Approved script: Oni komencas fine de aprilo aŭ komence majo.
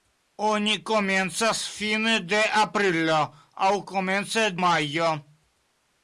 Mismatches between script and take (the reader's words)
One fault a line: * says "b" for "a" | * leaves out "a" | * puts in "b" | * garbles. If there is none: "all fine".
all fine